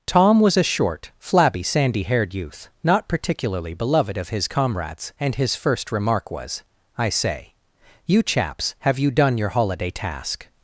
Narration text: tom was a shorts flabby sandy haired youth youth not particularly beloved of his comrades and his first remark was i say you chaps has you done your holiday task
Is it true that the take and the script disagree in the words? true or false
true